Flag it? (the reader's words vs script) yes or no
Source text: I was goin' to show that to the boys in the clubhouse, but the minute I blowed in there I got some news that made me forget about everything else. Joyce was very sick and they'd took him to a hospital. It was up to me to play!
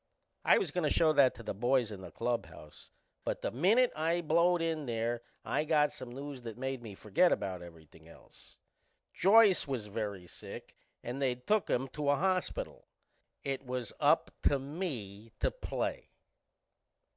no